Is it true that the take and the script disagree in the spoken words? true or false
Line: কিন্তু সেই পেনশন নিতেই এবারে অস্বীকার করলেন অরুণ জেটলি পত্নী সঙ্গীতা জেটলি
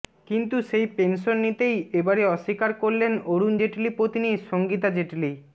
false